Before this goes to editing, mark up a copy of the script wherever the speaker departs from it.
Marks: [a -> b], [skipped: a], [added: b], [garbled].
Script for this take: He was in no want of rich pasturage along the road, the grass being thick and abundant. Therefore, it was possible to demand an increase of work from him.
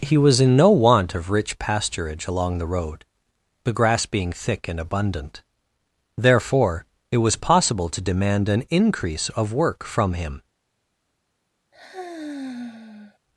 He was in no want of rich pasturage along the road, the grass being thick and abundant. Therefore, it was possible to demand an increase of work from him.